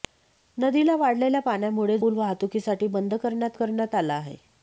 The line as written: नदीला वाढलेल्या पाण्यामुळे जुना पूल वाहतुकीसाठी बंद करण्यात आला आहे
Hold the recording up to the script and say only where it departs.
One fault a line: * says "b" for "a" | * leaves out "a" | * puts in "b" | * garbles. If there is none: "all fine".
* leaves out "जुना"
* puts in "करण्यात"